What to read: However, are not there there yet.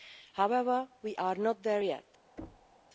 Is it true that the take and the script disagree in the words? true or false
true